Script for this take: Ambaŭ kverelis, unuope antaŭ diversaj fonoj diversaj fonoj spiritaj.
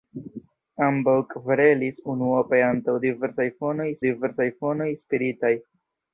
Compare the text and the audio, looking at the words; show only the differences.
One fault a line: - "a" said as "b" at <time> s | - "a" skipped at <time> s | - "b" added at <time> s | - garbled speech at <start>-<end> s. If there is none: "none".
none